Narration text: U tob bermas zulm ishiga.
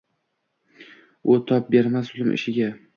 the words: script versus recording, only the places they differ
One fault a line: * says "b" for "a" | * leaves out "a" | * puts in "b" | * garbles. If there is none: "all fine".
all fine